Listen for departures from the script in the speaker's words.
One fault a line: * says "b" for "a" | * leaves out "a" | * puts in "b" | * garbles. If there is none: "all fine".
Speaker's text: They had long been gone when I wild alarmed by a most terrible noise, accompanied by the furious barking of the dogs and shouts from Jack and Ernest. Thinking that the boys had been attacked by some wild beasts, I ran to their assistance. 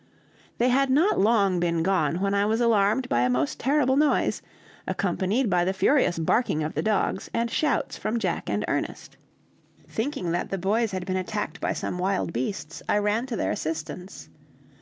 * puts in "not"
* says "was" for "wild"